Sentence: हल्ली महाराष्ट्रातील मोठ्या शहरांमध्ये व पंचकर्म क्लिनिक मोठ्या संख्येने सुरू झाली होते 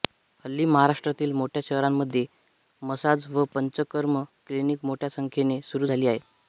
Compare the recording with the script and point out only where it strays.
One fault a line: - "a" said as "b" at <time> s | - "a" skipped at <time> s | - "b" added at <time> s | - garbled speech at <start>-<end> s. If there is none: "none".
- "मसाज" added at 2.8 s
- "होते" said as "आहेत" at 6.1 s